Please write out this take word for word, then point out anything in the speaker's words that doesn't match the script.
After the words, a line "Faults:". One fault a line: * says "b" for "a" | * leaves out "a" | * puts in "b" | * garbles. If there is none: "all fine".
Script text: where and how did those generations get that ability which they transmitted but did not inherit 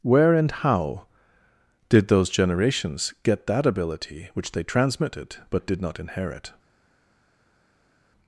where and how did those generations get that ability which they transmitted but did not inherit
Faults:
all fine